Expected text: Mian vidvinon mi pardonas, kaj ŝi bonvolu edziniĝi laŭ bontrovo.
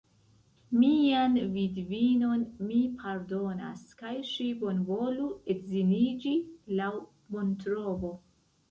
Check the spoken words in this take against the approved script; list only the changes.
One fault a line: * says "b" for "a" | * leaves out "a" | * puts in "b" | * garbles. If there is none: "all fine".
all fine